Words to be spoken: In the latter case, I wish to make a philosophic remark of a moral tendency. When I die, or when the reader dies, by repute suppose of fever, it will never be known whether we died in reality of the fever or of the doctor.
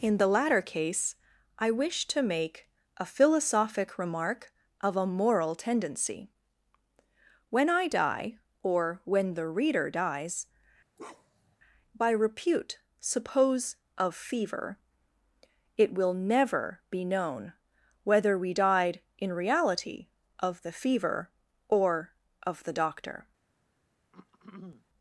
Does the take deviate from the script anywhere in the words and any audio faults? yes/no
yes